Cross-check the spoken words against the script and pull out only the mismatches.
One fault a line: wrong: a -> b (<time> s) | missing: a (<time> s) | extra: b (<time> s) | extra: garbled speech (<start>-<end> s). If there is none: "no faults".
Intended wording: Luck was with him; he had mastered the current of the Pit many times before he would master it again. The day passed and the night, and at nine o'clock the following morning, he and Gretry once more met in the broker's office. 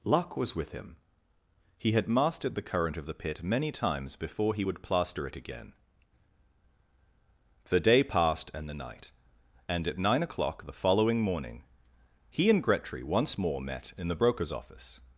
wrong: master -> plaster (4.8 s)